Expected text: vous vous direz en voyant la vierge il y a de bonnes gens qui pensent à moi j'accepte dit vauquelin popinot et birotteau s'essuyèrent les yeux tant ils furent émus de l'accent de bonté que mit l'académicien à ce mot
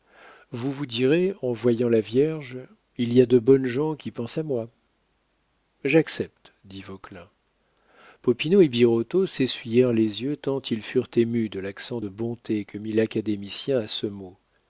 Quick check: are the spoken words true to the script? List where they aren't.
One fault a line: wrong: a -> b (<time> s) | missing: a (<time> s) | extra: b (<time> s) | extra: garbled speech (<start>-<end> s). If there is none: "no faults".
no faults